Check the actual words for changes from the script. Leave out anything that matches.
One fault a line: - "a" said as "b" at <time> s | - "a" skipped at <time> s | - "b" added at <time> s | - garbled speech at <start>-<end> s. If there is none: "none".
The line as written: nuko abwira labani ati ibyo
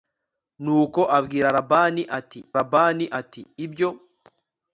- "labani ati" added at 2.6 s